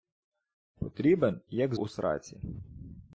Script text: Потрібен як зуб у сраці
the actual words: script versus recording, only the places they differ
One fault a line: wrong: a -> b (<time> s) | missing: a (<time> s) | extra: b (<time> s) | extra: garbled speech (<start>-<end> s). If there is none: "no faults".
missing: зуб (1.7 s)